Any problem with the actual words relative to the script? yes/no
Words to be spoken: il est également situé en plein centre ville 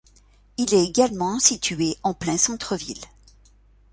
no